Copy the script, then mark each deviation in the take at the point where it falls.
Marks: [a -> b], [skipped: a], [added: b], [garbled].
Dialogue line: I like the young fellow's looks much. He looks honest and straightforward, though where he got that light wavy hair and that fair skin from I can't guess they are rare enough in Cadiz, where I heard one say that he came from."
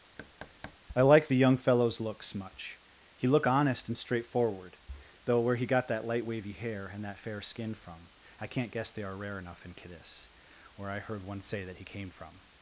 I like the young fellow's looks much. He [looks -> look] honest and straightforward, though where he got that light wavy hair and that fair skin from I can't guess they are rare enough in Cadiz, where I heard one say that he came from."